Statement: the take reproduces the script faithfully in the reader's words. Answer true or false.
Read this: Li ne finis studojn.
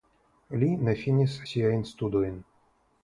false